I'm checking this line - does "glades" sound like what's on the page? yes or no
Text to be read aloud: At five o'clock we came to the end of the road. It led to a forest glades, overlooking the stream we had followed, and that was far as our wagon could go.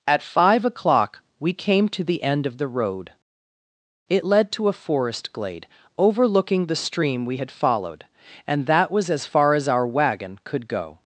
no